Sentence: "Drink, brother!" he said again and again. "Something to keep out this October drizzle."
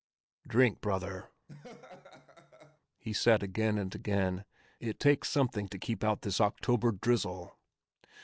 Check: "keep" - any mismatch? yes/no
no